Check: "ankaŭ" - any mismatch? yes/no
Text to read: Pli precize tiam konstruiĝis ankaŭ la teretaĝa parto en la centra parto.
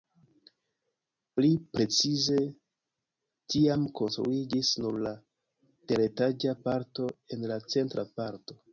yes